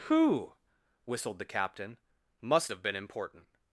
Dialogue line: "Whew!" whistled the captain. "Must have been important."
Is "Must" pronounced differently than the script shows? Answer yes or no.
no